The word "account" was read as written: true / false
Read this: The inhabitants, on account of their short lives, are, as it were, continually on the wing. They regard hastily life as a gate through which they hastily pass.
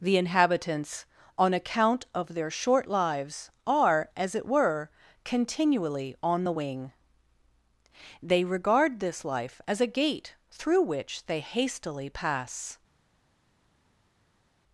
true